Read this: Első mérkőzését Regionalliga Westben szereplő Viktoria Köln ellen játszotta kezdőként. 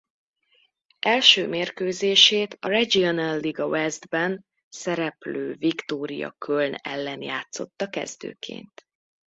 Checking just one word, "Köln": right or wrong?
right